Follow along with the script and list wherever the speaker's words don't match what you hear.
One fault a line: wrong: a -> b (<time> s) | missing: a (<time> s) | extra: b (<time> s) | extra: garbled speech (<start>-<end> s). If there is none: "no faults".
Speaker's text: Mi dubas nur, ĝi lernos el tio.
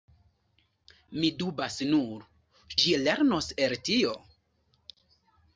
no faults